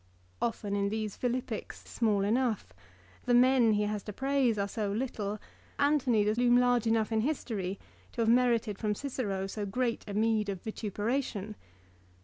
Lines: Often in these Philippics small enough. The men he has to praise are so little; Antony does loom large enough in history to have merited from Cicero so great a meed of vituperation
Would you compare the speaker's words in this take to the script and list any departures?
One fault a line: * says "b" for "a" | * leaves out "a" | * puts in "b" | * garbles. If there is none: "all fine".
all fine